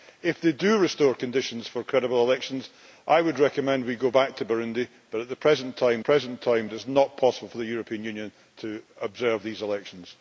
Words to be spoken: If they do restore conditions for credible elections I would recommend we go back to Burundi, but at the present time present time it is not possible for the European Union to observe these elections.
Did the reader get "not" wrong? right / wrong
right